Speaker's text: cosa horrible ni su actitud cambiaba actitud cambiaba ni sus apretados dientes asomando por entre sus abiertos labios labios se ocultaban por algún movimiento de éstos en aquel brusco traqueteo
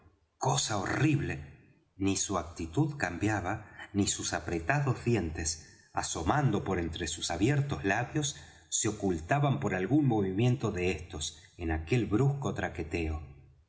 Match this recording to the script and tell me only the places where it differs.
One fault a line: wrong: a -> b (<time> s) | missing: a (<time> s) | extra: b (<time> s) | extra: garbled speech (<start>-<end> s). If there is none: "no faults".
missing: actitud cambiaba (3.9 s)
missing: labios (8.4 s)